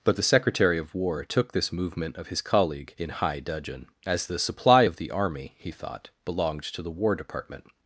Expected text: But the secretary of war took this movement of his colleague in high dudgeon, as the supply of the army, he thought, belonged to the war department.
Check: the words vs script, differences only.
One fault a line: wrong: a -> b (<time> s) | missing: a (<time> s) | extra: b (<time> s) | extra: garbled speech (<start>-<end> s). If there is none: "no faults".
no faults